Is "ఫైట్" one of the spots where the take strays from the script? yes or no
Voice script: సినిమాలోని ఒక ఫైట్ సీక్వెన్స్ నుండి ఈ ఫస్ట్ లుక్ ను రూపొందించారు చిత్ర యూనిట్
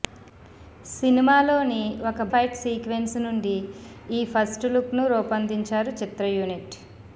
no